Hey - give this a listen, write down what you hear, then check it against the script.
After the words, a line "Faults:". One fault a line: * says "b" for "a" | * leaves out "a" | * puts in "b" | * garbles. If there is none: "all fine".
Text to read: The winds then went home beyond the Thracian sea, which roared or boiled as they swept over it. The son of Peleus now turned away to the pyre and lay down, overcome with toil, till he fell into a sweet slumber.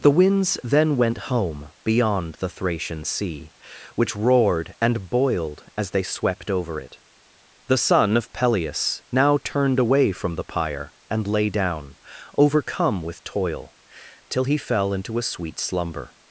The winds then went home beyond the Thracian sea, which roared and boiled as they swept over it. The son of Peleus now turned away from the pyre and lay down, overcome with toil, till he fell into a sweet slumber.
Faults:
* says "and" for "or"
* says "from" for "to"